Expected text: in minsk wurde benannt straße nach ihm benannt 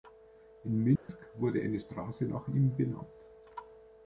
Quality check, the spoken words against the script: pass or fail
fail